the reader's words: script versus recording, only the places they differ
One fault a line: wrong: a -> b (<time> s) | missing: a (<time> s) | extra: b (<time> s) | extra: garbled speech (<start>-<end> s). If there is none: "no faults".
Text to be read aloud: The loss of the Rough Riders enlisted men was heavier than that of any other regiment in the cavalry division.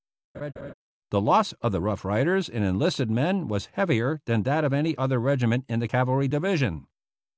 extra: in (2.5 s)